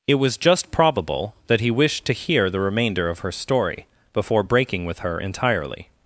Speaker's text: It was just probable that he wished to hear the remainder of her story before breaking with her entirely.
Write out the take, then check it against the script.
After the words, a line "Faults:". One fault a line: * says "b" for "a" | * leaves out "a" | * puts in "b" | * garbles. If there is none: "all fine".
It was just probable that he wished to hear the remainder of her story before breaking with her entirely.
Faults:
all fine